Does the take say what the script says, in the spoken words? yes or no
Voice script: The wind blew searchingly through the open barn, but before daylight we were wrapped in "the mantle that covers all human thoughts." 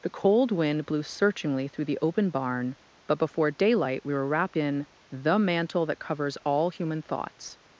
no